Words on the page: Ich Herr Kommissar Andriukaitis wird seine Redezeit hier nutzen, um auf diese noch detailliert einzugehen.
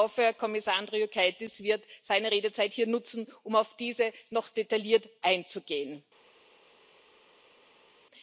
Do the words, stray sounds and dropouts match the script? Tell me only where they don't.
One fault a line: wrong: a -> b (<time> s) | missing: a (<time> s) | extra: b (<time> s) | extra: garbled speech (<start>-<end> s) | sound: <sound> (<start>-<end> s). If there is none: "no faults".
extra: hoffe (0.0 s)